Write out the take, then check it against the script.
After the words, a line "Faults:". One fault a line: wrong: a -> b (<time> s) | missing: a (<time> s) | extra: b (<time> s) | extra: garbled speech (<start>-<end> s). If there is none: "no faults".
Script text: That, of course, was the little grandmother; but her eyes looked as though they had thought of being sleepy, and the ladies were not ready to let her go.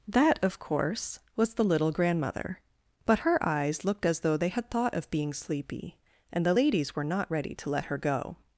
That, of course, was the little grandmother; but her eyes looked as though they had thought of being sleepy, and the ladies were not ready to let her go.
Faults:
no faults